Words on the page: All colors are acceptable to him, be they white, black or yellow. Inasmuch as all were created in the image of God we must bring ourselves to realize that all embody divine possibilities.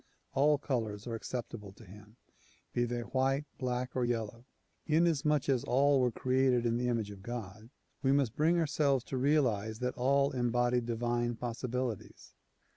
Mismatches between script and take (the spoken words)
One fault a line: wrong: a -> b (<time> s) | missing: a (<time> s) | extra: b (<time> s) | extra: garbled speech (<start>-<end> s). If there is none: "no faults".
no faults